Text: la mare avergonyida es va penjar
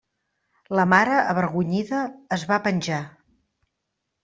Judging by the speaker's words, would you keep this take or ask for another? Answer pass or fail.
pass